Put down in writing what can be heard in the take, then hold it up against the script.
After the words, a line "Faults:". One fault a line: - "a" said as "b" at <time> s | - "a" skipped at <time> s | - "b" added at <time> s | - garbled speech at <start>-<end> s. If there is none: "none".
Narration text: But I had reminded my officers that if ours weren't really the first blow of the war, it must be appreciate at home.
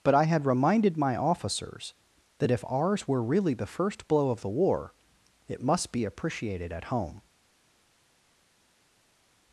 But I had reminded my officers that if ours were really the first blow of the war, it must be appreciated at home.
Faults:
- "weren't" said as "were" at 3.1 s
- "appreciate" said as "appreciated" at 6.0 s